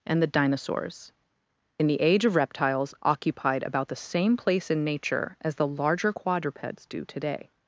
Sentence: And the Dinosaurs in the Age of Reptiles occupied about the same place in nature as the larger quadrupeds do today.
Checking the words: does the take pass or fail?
pass